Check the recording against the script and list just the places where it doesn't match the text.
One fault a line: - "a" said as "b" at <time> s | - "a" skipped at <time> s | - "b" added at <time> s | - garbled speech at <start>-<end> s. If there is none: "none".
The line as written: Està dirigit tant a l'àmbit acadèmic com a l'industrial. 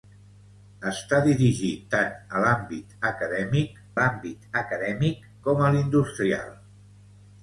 - "l'àmbit acadèmic" added at 4.0 s